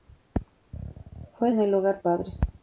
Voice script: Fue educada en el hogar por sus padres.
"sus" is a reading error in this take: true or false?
true